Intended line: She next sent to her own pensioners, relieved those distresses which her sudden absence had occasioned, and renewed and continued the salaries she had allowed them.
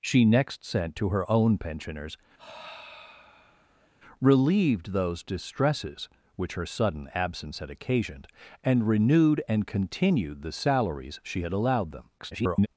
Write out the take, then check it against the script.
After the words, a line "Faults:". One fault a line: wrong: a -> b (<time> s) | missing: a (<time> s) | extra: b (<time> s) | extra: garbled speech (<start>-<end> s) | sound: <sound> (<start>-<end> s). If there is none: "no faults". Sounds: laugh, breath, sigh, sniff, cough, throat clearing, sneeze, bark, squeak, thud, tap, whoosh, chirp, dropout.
She next sent to her own pensioners, relieved those distresses which her sudden absence had occasioned, and renewed and continued the salaries she had allowed them. [garbled]
Faults:
sound: sigh (2.4-3.9 s)
extra: garbled speech (12.2-12.7 s)